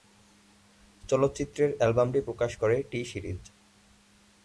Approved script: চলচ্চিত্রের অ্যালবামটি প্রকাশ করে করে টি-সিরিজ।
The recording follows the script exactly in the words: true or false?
false